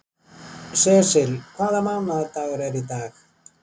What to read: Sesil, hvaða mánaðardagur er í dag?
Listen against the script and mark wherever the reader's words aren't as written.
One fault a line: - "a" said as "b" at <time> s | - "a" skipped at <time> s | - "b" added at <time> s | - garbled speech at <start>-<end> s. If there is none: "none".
none